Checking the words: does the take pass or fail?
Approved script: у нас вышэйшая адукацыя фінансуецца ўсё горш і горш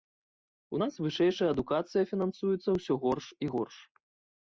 pass